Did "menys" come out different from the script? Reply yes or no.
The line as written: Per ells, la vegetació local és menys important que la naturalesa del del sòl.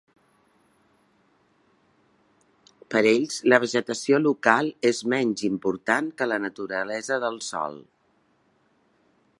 no